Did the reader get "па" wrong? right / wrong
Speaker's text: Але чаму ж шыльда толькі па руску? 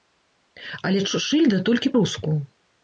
wrong